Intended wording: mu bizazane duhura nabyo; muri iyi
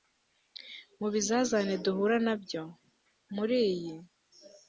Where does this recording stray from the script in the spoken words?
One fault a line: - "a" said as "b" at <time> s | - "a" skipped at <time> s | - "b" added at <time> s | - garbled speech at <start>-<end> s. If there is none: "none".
none